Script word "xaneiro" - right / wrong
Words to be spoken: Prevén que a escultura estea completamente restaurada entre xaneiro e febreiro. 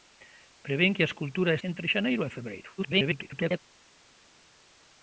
right